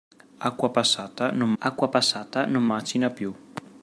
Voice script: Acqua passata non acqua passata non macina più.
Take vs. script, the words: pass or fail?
pass